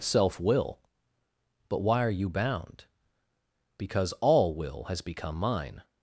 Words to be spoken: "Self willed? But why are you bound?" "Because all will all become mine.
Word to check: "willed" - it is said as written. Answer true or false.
false